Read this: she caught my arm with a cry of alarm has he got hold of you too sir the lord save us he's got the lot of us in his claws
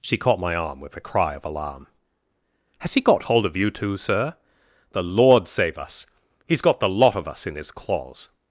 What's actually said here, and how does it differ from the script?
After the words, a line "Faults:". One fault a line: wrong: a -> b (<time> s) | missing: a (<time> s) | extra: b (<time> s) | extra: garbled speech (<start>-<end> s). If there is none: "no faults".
she caught my arm with a cry of alarm has he got hold of you too sir the lord save us he's got the lot of us in his claws
Faults:
no faults